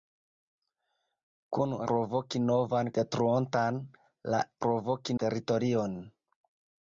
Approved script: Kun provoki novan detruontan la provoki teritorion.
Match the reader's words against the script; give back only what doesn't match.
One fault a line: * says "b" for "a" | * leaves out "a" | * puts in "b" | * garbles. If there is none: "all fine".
all fine